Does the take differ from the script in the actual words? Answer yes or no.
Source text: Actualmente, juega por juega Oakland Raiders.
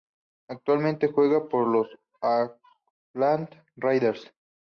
yes